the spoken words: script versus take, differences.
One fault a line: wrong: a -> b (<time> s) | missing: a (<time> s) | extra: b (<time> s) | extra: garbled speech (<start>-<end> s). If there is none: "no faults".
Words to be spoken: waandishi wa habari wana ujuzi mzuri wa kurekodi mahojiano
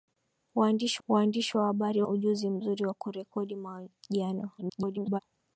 extra: waandishi (1.1 s)
missing: wana (2.0 s)
extra: garbled speech (4.6-5.2 s)